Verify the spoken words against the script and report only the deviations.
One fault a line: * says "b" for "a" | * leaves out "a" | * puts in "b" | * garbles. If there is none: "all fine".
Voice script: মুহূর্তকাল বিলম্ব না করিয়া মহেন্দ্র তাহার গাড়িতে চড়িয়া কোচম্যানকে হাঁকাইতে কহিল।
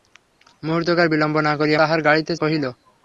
* leaves out "মহেন্দ্র"
* leaves out "চড়িয়া কোচম্যানকে হাঁকাইতে"